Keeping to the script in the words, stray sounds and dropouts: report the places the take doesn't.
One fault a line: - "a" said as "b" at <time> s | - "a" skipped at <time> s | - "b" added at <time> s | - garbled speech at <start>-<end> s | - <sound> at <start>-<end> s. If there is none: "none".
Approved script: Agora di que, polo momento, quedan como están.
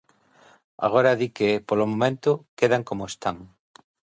none